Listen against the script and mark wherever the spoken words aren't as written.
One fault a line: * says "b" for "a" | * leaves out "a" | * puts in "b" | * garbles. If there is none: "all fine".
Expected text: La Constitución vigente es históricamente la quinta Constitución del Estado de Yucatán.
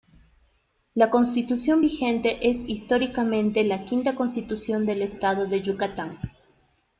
all fine